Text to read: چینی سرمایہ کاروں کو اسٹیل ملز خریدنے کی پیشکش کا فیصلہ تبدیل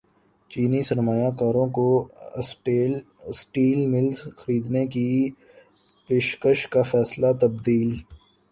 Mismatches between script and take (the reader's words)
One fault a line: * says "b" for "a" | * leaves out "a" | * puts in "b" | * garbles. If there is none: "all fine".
all fine